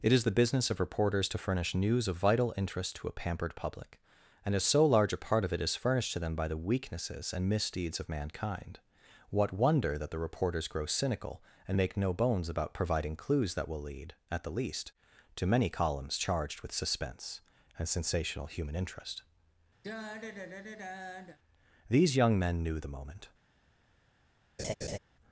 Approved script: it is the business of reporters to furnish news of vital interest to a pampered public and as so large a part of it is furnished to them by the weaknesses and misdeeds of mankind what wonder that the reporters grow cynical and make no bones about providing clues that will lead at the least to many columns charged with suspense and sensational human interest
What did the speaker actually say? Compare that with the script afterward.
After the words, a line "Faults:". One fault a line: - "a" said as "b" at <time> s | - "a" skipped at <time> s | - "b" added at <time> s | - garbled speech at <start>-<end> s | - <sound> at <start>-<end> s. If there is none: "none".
it is the business of reporters to furnish news of vital interest to a pampered public and as so large a part of it is furnished to them by the weaknesses and misdeeds of mankind what wonder that the reporters grow cynical and make no bones about providing clues that will lead at the least to many columns charged with suspense and sensational human interest these young men knew the moment
Faults:
- sigh at 19.8-21.4 s
- "these young men knew the moment" added at 21.9 s
- laugh at 24.6-25.0 s